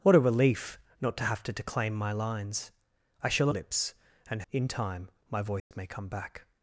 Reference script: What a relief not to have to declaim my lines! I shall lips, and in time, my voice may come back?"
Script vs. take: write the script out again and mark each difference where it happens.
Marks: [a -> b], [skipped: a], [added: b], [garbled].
What a relief not to have to declaim my lines! I shall lips, and in time, my voice may come back?"